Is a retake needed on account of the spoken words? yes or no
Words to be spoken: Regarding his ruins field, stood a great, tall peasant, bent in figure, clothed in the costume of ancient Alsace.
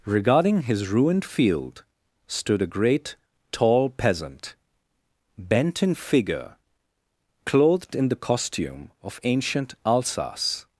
yes